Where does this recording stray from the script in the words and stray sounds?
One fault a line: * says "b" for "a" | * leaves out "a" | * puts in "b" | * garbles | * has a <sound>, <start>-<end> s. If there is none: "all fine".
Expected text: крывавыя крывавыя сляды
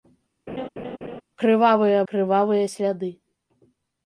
* has a laugh, 0.5-1.2 s